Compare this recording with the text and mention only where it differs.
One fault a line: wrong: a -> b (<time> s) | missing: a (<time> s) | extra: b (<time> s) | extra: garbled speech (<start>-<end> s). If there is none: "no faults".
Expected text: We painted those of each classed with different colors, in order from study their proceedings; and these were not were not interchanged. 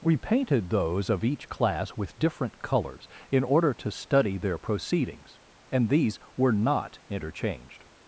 wrong: classed -> class (1.5 s)
wrong: from -> to (3.8 s)
missing: were not (7.0 s)